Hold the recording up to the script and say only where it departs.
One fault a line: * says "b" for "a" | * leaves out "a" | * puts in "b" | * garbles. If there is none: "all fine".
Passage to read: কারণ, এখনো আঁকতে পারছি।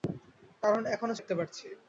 all fine